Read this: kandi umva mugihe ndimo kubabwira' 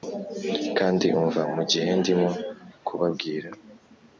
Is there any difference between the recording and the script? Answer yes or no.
no